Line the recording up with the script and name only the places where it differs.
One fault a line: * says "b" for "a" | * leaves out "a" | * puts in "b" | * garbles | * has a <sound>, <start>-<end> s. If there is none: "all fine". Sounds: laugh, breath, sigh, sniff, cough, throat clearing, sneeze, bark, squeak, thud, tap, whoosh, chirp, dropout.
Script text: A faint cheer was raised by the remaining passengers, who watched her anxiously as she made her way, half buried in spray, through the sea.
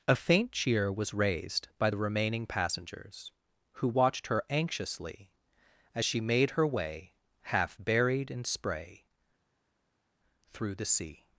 all fine